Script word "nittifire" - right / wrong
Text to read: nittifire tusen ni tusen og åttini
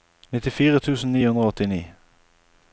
right